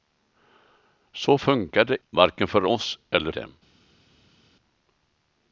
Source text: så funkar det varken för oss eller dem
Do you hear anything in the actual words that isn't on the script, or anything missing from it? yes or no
no